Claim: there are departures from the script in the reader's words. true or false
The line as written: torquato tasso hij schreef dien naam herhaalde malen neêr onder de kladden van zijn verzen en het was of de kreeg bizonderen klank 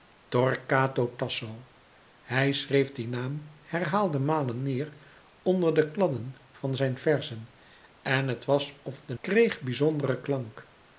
false